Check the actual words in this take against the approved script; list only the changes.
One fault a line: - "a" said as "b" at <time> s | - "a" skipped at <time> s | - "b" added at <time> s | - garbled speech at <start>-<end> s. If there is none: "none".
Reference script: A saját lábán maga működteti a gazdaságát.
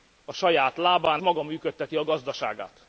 none